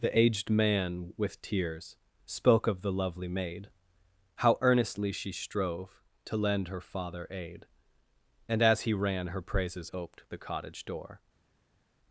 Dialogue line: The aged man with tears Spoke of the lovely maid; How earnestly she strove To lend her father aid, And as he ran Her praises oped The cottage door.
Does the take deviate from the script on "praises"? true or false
false